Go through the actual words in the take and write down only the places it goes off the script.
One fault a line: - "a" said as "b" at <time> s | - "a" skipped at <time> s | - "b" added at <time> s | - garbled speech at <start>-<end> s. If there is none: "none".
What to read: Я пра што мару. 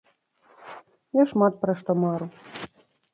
- "шмат" added at 1.3 s